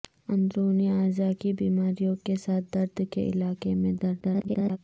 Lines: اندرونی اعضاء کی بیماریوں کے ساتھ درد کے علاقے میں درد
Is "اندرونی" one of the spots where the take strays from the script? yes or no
no